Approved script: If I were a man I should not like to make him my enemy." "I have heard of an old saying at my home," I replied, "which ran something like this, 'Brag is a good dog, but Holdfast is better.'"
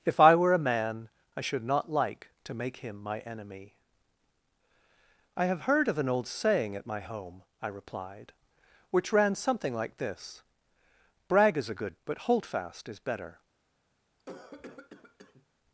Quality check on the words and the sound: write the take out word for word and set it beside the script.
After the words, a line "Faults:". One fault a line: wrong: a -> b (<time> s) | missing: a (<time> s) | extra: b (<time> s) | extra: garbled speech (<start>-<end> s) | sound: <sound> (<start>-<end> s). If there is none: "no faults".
If I were a man I should not like to make him my enemy." "I have heard of an old saying at my home," I replied, "which ran something like this, 'Brag is a good but Holdfast is better.'"
Faults:
missing: dog (12.0 s)
sound: cough (14.2-15.5 s)